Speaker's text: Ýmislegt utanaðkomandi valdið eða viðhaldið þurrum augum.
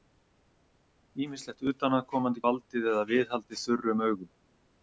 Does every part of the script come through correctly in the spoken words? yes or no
yes